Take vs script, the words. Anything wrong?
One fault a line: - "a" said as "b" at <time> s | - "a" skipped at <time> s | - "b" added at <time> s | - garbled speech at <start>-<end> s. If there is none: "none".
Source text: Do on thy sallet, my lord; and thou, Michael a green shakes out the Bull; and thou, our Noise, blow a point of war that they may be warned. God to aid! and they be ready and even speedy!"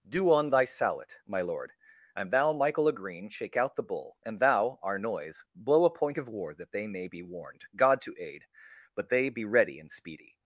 - "shakes" said as "shake" at 3.3 s
- "and" said as "but" at 8.9 s
- "even" skipped at 9.9 s